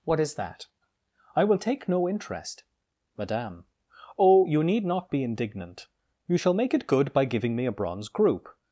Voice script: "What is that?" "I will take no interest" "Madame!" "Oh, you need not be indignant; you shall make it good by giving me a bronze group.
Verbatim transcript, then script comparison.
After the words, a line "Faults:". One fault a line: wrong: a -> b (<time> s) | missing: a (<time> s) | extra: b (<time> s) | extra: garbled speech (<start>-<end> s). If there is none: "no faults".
"What is that?" "I will take no interest" "Madame!" "Oh, you need not be indignant; you shall make it good by giving me a bronze group.
Faults:
no faults